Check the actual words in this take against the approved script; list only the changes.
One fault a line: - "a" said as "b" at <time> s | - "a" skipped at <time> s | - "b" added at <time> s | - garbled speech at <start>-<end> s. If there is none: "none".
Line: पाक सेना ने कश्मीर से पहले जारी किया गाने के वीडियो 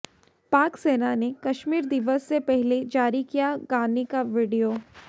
- "दिवस" added at 1.9 s
- "के" said as "का" at 4.0 s